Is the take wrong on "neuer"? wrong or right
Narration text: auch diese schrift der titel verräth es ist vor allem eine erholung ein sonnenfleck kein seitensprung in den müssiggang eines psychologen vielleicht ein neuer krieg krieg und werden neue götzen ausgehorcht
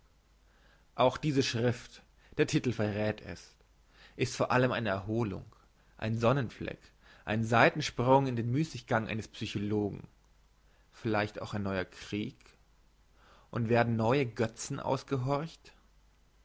right